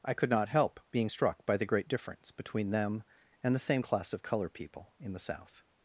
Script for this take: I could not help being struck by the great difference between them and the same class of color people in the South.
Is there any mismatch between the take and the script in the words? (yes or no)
no